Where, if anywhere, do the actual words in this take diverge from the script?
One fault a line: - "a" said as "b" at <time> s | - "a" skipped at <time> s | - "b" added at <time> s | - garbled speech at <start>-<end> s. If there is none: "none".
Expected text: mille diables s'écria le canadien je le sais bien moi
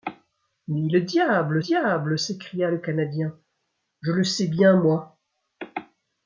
- "diables" added at 1.6 s